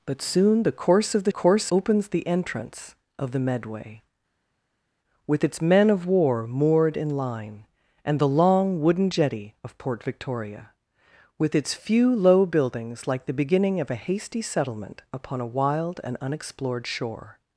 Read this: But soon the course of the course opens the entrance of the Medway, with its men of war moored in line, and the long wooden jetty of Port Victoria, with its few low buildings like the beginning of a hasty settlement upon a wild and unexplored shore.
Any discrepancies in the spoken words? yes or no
no